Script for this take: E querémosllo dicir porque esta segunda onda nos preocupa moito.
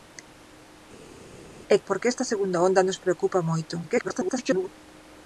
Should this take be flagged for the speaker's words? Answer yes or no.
yes